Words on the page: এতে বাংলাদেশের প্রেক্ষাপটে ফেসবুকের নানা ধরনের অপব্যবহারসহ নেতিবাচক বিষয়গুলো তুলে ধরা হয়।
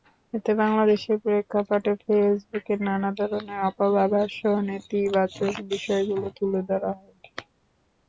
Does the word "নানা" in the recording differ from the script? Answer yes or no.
no